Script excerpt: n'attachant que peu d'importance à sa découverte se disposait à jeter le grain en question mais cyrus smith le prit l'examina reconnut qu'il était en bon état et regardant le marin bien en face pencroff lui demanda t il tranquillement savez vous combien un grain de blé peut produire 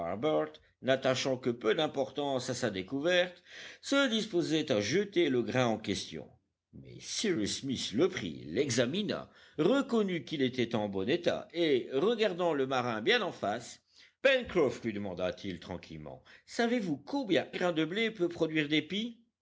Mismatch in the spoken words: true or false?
true